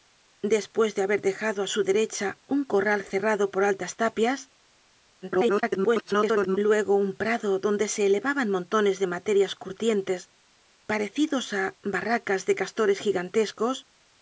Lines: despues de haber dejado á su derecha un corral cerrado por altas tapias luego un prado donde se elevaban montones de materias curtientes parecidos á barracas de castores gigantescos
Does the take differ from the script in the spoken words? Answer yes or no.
yes